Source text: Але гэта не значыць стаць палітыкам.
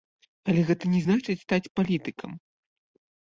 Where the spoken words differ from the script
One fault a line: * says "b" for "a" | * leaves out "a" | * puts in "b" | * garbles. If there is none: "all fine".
all fine